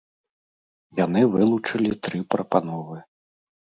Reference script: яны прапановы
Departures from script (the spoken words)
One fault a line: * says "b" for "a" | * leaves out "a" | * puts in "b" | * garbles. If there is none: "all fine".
* puts in "вылучылі тры"